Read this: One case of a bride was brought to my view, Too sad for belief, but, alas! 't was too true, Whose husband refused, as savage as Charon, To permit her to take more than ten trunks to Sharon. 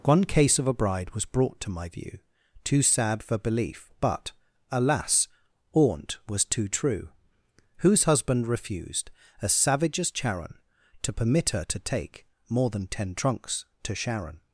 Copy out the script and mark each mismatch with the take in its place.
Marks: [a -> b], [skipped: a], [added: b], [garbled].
One case of a bride was brought to my view, Too sad for belief, but, alas! ['t -> aunt] was too true, Whose husband refused, as savage as Charon, To permit her to take more than ten trunks to Sharon.